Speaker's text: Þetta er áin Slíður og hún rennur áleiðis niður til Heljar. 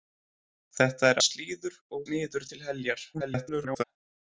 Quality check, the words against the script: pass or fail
fail